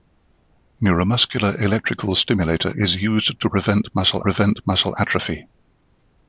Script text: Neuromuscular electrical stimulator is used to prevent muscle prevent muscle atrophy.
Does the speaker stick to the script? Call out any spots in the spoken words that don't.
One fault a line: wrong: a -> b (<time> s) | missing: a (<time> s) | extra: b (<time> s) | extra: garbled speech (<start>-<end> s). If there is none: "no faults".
no faults